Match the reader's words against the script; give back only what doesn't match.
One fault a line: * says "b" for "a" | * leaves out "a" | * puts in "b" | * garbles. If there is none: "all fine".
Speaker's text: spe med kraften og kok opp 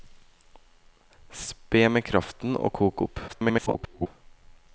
* garbles